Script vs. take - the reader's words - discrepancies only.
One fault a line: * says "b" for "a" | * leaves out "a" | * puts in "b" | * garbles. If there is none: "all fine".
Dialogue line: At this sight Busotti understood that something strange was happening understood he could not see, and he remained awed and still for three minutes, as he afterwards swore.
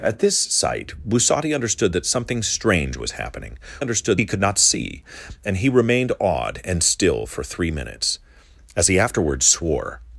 all fine